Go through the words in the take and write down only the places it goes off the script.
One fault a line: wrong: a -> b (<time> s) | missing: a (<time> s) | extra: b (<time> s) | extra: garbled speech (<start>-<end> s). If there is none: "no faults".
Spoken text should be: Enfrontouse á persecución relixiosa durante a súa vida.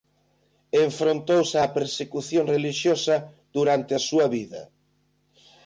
no faults